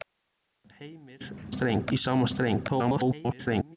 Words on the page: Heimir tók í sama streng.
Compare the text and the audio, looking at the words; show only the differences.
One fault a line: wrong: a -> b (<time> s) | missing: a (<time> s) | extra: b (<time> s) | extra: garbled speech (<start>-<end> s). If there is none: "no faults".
wrong: tók -> streng (1.5 s)
extra: garbled speech (2.7-3.8 s)